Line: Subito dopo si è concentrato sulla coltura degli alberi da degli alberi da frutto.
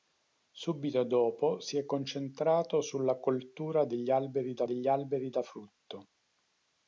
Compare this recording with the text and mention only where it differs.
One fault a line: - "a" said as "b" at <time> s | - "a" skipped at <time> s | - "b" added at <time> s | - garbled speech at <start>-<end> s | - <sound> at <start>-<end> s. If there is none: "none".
none